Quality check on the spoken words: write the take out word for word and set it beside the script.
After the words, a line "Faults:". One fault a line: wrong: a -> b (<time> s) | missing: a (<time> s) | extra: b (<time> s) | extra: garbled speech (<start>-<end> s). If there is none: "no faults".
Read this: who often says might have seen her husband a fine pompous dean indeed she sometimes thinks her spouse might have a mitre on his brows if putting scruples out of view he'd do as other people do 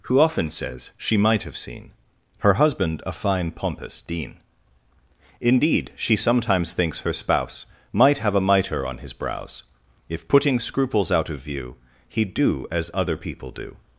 who often says she might have seen her husband a fine pompous dean indeed she sometimes thinks her spouse might have a mitre on his brows if putting scruples out of view he'd do as other people do
Faults:
extra: she (1.0 s)